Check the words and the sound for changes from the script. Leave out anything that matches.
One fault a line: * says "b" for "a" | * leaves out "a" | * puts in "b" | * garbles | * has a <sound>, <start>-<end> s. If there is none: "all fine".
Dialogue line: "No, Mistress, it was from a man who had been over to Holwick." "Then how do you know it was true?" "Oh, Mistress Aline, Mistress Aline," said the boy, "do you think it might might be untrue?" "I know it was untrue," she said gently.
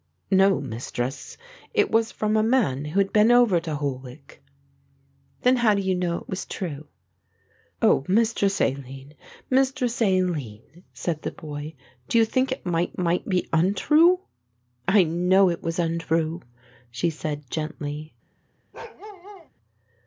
* has a bark, 18.7-19.5 s